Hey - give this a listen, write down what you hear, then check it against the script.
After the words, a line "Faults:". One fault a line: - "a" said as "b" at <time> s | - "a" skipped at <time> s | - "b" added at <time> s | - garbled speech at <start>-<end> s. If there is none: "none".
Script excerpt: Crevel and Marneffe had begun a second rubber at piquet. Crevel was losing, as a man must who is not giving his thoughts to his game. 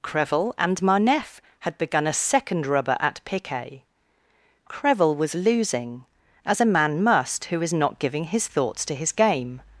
Crevel and Marneffe had begun a second rubber at piquet. Crevel was losing, as a man must who is not giving his thoughts to his game.
Faults:
none